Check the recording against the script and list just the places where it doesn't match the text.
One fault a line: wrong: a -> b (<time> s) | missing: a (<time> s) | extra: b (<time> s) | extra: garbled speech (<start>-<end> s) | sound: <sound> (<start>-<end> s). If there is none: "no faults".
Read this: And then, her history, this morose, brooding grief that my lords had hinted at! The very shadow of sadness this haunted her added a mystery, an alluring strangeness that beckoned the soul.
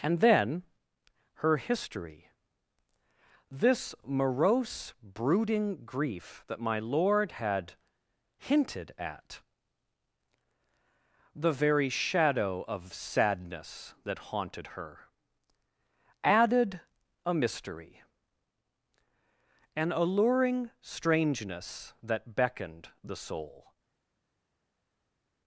wrong: lords -> lord (6.8 s)
wrong: this -> that (14.0 s)